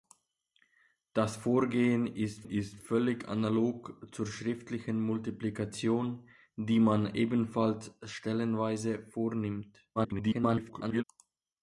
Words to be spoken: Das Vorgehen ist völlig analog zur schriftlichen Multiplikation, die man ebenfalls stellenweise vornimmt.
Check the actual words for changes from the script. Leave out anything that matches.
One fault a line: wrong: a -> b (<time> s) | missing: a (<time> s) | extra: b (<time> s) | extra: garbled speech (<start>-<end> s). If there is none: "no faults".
extra: ist (2.4 s)
extra: garbled speech (10.0-11.0 s)